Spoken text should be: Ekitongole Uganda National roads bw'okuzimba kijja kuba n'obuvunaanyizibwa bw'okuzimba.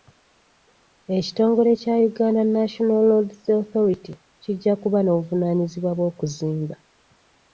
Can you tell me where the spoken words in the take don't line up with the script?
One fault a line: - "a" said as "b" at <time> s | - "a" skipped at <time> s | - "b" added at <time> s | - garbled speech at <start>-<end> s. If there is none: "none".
- "kya" added at 1.8 s
- "bw'okuzimba" said as "authority" at 3.6 s